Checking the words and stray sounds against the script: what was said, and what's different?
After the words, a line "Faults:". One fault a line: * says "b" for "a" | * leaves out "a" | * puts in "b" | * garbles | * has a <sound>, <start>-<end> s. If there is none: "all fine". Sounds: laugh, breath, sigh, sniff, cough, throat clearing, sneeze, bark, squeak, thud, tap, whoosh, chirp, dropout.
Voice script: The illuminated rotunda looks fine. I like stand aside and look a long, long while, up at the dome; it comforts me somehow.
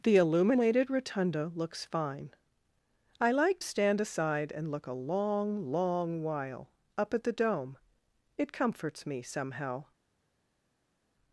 The illuminated rotunda looks fine. I like stand aside and look a long, long while, up at the dome; it comforts me somehow.
Faults:
all fine